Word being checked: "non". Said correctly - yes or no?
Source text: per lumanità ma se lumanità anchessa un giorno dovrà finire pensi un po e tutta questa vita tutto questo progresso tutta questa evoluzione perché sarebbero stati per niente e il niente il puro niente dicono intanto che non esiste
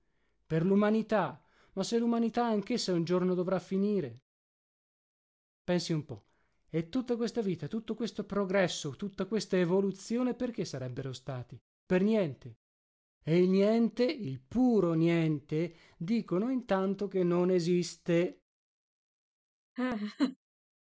yes